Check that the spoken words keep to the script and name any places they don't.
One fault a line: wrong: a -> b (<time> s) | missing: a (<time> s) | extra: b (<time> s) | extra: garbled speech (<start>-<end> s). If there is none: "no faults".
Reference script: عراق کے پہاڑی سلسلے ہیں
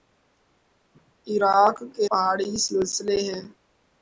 no faults